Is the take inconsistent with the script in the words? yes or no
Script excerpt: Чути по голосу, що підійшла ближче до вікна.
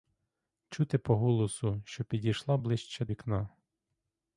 yes